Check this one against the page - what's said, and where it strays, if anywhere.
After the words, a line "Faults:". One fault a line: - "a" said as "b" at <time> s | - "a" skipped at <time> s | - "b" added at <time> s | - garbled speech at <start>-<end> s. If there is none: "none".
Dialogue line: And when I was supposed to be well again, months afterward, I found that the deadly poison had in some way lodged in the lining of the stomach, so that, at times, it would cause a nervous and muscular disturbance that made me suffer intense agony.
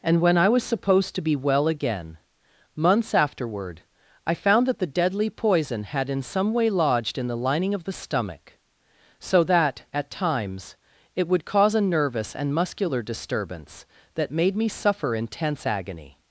And when I was supposed to be well again, months afterward, I found that the deadly poison had in some way lodged in the lining of the stomach, so that, at times, it would cause a nervous and muscular disturbance that made me suffer intense agony.
Faults:
none